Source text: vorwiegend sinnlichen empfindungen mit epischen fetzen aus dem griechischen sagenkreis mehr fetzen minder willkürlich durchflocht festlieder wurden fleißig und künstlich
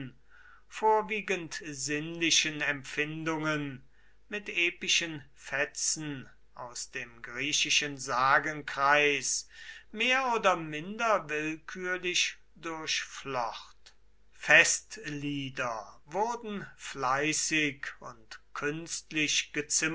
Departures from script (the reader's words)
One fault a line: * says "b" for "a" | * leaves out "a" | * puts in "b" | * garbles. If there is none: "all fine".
* says "oder" for "fetzen"